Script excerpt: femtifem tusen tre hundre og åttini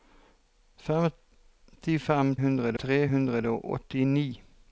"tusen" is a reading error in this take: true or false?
true